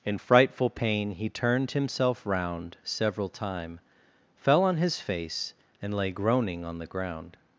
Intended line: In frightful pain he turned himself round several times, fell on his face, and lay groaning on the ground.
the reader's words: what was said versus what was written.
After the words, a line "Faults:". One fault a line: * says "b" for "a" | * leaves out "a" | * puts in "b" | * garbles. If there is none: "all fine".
In frightful pain he turned himself round several time, fell on his face, and lay groaning on the ground.
Faults:
* says "time" for "times"